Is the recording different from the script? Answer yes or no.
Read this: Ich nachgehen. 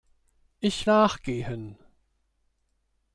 no